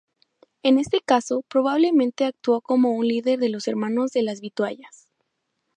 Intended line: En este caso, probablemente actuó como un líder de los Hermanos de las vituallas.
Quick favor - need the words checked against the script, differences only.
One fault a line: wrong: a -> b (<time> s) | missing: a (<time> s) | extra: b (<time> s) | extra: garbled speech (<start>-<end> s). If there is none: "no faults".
no faults